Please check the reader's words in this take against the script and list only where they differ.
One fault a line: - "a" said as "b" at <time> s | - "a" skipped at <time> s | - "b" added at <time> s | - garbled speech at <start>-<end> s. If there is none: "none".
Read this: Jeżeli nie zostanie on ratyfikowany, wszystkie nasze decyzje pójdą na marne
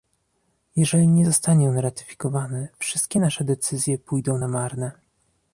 none